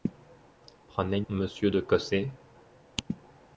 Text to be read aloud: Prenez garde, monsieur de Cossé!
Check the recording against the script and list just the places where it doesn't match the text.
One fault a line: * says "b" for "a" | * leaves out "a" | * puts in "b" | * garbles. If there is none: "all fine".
* leaves out "garde"